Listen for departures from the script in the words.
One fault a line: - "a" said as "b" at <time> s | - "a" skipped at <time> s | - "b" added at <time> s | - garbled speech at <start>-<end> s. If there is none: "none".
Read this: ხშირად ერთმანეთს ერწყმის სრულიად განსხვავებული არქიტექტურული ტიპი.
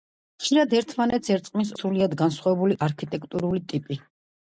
none